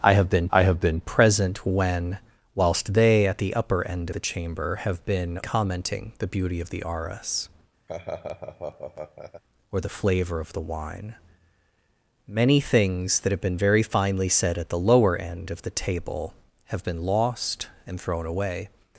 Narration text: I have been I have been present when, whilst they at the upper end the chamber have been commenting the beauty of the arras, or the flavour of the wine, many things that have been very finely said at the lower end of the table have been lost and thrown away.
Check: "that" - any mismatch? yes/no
no